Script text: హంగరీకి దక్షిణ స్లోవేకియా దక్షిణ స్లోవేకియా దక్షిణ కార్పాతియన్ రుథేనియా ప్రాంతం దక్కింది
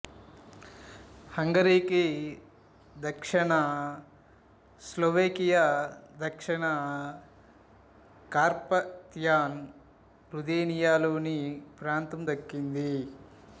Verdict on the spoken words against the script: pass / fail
fail